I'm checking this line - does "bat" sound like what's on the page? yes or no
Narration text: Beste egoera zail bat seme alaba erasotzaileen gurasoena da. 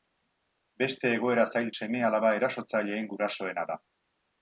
no